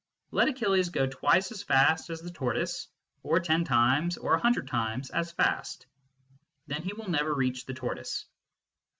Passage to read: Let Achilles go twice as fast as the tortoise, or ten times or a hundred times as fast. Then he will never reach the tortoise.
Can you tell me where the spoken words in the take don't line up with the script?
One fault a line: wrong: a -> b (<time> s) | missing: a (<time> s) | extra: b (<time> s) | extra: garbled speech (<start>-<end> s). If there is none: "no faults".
no faults